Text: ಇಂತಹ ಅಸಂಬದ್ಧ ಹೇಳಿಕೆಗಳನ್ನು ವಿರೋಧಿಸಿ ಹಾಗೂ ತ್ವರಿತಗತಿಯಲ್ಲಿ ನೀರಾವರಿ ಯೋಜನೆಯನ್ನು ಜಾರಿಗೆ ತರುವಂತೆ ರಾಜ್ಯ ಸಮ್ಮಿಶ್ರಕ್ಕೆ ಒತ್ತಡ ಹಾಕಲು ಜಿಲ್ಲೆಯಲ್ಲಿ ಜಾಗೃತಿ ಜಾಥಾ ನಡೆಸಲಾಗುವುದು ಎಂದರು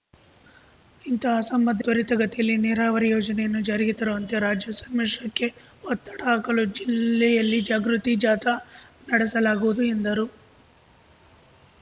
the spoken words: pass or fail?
fail